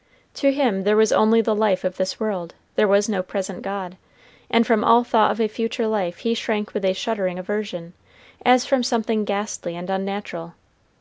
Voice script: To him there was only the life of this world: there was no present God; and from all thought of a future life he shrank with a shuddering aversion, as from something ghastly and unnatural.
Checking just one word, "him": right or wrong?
right